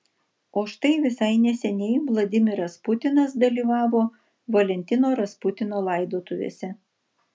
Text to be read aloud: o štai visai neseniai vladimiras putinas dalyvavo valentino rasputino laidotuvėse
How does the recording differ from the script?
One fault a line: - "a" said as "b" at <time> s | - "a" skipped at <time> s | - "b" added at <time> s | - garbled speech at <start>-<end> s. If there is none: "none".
none